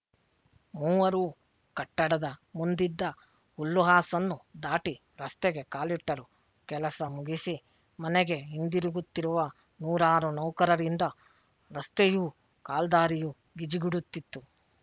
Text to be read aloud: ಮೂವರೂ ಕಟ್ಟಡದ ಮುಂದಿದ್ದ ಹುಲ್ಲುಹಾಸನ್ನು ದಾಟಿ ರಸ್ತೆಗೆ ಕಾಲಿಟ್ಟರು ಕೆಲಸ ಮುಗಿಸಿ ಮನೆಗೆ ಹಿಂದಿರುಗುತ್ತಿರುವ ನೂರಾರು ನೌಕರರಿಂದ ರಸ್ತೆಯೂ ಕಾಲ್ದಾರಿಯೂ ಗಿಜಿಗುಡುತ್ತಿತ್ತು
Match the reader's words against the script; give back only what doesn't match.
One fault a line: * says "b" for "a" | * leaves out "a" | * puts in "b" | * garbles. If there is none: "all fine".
all fine